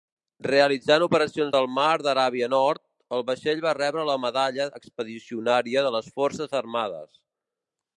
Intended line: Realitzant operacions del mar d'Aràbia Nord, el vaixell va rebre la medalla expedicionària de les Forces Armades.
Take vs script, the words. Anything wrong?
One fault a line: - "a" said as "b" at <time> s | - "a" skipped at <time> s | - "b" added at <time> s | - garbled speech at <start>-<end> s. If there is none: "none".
none